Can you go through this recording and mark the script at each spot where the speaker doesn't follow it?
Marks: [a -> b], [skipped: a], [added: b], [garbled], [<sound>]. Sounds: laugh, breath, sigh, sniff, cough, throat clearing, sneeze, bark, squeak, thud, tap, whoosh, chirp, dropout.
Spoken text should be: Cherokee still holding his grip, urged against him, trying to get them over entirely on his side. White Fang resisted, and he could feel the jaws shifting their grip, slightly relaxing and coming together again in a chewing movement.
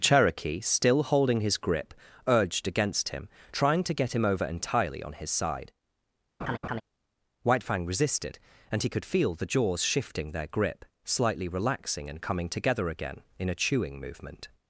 Cherokee still holding his grip, urged against him, trying to get [them -> him] over entirely on his side. [laugh] White Fang resisted, and he could feel the jaws shifting their grip, slightly relaxing and coming together again in a chewing movement.